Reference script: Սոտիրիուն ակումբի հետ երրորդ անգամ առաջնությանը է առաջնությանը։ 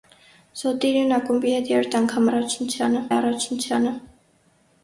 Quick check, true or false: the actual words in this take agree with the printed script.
true